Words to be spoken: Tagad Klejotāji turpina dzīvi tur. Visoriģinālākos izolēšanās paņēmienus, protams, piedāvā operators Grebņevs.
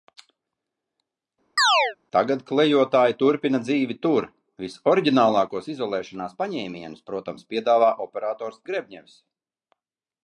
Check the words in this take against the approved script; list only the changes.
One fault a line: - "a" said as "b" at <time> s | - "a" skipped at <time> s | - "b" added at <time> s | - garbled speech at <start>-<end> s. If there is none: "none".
none